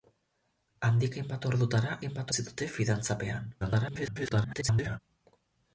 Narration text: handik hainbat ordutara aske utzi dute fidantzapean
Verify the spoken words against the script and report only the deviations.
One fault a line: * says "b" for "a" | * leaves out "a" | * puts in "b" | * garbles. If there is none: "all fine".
* says "hainbat" for "aske"
* garbles